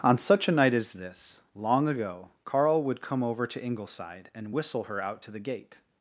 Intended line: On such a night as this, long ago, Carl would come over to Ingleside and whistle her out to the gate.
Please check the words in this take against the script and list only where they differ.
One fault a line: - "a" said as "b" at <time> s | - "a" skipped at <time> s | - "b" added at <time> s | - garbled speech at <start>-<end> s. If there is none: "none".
none